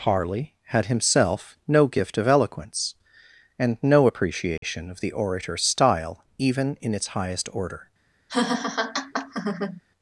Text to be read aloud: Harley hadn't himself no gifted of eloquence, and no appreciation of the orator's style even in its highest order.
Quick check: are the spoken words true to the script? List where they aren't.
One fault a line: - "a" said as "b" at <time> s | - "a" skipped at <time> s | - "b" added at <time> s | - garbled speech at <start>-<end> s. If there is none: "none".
- "hadn't" said as "had" at 0.7 s
- "gifted" said as "gift" at 1.9 s